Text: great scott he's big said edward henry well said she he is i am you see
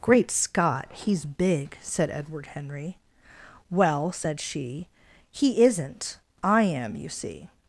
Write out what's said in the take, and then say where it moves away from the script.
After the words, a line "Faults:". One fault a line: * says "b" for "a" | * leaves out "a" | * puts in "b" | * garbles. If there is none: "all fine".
great scott he's big said edward henry well said she he isn't i am you see
Faults:
* says "isn't" for "is"